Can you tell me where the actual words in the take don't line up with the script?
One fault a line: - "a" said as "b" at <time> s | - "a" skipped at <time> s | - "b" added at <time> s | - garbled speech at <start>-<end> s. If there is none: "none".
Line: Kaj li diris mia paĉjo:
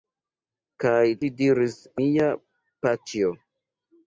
none